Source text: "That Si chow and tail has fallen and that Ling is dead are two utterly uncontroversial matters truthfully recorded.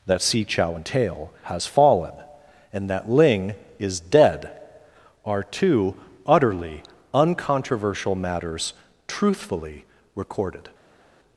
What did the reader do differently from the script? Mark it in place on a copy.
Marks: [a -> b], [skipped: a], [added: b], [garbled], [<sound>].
"That Si chow and tail has fallen and that Ling is dead are two utterly uncontroversial matters truthfully recorded.